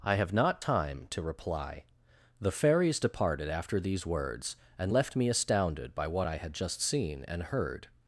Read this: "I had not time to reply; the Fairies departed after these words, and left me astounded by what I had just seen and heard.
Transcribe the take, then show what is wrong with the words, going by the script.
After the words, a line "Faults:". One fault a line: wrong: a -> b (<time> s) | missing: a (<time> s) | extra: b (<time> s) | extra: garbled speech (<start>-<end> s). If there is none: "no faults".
"I have not time to reply; the Fairies departed after these words, and left me astounded by what I had just seen and heard.
Faults:
wrong: had -> have (0.1 s)